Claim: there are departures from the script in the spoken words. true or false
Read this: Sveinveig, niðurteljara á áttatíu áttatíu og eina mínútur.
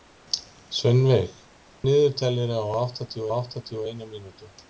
false